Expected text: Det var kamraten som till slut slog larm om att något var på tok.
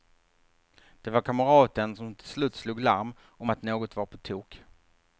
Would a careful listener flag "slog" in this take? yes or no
no